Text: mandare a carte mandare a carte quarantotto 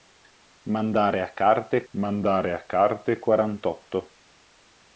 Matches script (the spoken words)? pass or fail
pass